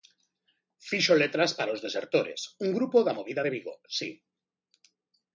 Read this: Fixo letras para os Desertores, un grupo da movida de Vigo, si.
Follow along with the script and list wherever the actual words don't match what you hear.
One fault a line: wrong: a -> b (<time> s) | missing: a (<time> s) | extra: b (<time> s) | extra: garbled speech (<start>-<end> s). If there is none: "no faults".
no faults